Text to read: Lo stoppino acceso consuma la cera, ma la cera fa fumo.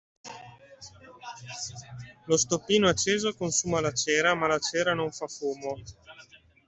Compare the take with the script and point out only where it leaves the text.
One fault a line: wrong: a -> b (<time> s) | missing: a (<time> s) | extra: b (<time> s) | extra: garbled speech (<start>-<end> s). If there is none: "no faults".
extra: non (5.0 s)